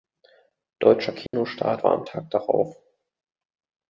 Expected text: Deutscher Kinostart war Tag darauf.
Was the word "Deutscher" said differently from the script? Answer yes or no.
no